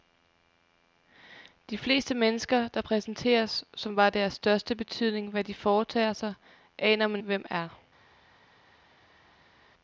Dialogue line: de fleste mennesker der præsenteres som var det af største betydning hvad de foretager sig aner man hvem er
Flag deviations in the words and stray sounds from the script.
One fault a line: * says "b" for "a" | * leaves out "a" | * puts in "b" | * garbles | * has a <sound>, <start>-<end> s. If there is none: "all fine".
all fine